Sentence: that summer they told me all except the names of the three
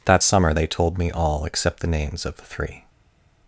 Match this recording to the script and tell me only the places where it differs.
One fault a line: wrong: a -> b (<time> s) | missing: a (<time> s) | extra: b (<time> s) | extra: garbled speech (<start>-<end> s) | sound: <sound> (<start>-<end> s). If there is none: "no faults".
no faults